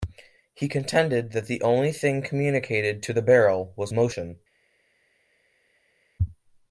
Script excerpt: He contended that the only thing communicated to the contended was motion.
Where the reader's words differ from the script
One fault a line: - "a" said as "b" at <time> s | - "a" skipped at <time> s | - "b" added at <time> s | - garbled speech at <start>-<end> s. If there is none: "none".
- "contended" said as "barrel" at 3.2 s